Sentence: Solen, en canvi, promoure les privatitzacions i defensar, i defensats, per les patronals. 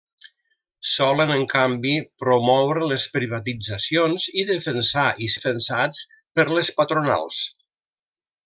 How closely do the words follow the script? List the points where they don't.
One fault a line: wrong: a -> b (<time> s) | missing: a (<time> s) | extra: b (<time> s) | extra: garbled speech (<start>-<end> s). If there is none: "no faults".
no faults